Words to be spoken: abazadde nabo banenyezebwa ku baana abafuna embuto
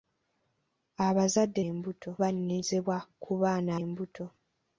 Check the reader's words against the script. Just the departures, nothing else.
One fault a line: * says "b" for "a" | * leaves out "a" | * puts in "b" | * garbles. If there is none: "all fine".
* says "embuto" for "nabo"
* leaves out "abafuna"